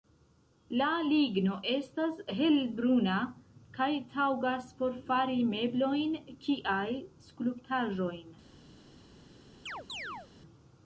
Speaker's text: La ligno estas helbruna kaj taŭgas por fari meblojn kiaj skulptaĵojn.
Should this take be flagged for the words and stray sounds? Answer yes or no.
yes